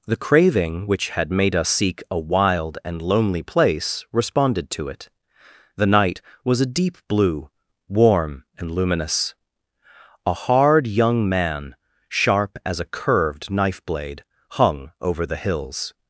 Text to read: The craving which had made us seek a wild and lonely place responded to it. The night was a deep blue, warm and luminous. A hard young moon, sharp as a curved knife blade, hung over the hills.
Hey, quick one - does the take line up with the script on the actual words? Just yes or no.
no